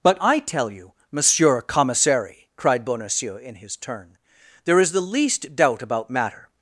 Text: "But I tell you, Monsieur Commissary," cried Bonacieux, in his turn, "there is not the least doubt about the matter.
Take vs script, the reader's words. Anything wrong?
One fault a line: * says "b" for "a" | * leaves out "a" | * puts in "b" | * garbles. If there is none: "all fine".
* leaves out "not"
* leaves out "the"